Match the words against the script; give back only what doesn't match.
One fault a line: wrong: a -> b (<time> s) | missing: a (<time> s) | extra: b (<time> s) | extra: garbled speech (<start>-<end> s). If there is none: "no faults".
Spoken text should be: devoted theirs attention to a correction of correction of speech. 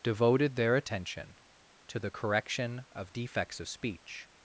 wrong: theirs -> their (0.6 s)
wrong: a -> the (2.0 s)
wrong: correction -> defects (3.1 s)